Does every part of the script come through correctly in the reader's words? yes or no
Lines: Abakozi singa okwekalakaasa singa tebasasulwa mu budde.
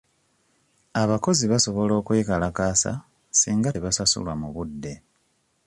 no